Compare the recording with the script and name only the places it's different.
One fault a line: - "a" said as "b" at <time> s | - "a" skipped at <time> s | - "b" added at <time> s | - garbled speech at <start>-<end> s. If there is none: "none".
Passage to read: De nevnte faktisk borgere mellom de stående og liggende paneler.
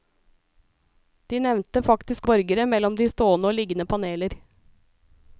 none